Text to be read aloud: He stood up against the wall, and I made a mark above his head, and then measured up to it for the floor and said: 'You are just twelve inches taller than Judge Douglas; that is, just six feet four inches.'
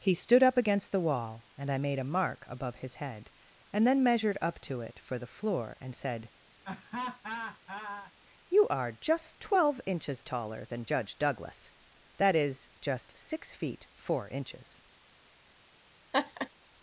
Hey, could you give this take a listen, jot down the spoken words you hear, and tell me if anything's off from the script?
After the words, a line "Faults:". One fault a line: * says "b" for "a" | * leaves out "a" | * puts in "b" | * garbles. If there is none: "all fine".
He stood up against the wall, and I made a mark above his head, and then measured up to it for the floor and said: 'You are just twelve inches taller than Judge Douglas; that is, just six feet four inches.'
Faults:
all fine